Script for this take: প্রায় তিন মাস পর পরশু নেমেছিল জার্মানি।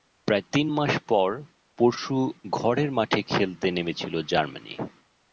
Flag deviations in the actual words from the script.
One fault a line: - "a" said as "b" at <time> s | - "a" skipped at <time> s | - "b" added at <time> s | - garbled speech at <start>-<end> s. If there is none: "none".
- "ঘরের মাঠে খেলতে" added at 2.5 s